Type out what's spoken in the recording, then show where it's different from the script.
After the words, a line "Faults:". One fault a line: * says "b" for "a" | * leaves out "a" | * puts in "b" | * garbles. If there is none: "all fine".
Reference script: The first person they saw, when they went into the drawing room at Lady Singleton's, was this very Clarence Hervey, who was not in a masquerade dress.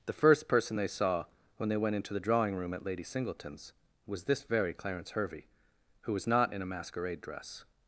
The first person they saw, when they went into the drawing room at Lady Singleton's, was this very Clarence Hervey, who was not in a masquerade dress.
Faults:
all fine